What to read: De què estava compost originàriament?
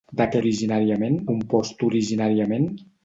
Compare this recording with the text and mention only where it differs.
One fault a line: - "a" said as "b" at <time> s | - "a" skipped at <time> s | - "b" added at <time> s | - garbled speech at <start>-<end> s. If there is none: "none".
- "estava" said as "originàriament" at 0.4 s